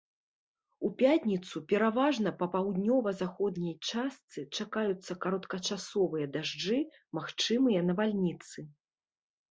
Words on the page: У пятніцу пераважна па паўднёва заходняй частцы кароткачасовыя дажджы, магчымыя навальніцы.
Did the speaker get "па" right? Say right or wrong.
right